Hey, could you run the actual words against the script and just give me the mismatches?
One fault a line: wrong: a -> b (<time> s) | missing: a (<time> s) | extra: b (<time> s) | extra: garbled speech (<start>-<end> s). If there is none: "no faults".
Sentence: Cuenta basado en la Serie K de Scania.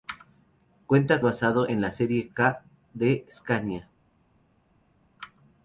no faults